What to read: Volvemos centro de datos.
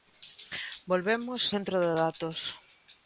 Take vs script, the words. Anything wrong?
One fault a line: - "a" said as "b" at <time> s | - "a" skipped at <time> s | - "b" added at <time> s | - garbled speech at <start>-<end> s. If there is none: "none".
none